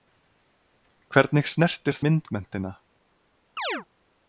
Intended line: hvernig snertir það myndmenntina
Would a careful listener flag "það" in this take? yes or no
yes